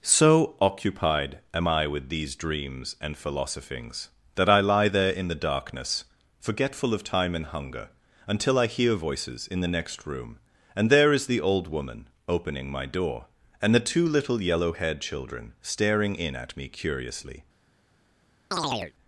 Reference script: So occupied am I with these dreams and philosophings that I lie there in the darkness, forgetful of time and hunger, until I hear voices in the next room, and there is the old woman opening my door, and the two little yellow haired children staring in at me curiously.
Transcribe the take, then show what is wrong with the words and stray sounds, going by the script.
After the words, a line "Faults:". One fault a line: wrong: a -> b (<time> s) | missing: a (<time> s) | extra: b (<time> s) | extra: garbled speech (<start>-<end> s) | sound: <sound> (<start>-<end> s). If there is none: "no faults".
So occupied am I with these dreams and philosophings that I lie there in the darkness, forgetful of time and hunger, until I hear voices in the next room, and there is the old woman opening my door, and the two little yellow haired children staring in at me curiously.
Faults:
sound: chirp (18.5-18.9 s)